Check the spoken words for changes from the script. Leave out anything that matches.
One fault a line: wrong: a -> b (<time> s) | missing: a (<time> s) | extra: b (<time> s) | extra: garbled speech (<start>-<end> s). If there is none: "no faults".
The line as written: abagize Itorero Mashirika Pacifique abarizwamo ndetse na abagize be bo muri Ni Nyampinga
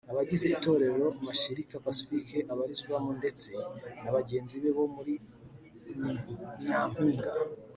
wrong: abagize -> bagenzi (4.2 s)